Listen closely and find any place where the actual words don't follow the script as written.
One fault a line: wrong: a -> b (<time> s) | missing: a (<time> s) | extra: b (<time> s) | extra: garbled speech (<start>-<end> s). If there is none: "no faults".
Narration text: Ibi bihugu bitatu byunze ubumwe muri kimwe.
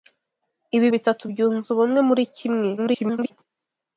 missing: bihugu (0.9 s)
extra: garbled speech (2.8-3.3 s)